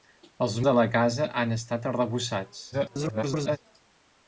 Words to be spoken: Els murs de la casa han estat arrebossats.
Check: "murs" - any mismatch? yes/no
yes